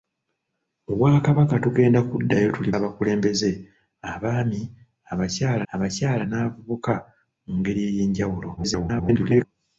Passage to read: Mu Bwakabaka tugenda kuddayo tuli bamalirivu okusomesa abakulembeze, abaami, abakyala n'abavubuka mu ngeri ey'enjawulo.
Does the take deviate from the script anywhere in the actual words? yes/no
yes